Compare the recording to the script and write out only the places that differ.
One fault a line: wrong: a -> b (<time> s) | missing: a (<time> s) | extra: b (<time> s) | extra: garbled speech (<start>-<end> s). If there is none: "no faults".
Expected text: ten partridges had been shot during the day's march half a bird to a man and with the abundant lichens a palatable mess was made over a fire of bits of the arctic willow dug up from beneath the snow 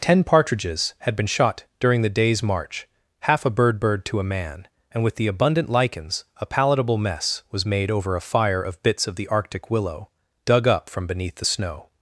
extra: bird (3.8 s)